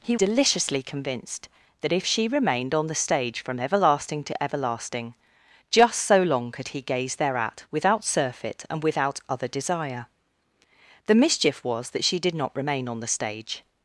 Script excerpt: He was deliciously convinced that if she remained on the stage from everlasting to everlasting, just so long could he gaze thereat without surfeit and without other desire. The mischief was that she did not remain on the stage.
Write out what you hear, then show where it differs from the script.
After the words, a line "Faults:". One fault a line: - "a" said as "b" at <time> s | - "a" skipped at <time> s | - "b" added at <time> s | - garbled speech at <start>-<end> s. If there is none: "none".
He deliciously convinced that if she remained on the stage from everlasting to everlasting, just so long could he gaze thereat without surfeit and without other desire. The mischief was that she did not remain on the stage.
Faults:
- "was" skipped at 0.2 s